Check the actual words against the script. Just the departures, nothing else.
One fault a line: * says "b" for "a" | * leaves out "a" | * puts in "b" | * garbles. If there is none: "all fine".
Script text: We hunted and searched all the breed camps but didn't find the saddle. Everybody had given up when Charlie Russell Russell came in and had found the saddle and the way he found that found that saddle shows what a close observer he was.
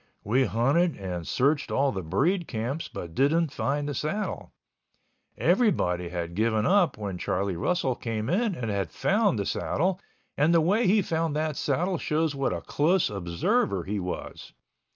* leaves out "Russell"
* leaves out "found that"